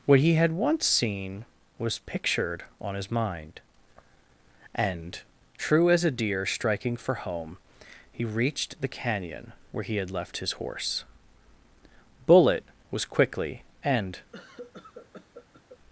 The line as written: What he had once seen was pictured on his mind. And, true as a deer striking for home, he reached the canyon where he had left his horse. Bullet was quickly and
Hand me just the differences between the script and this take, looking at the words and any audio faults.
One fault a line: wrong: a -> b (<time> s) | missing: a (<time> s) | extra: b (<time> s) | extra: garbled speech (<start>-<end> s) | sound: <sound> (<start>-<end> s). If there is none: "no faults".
sound: cough (14.3-15.8 s)